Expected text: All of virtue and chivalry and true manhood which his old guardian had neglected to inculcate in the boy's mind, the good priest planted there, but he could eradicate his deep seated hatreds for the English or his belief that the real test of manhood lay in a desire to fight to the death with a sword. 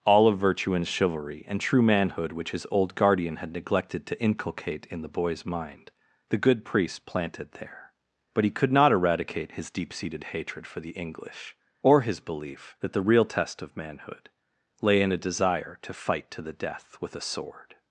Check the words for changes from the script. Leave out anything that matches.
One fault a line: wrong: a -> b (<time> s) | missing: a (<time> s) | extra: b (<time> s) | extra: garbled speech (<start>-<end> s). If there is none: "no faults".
extra: not (8.7 s)
wrong: hatreds -> hatred (10.2 s)